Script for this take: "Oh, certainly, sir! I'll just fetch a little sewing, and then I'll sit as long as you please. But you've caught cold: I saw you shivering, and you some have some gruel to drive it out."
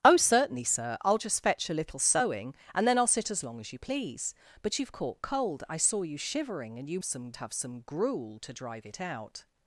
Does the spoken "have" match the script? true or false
true